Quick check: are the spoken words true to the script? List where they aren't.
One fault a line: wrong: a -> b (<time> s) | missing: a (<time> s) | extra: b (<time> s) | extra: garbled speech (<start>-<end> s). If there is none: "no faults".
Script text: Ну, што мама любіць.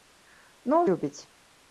missing: што мама (0.8 s)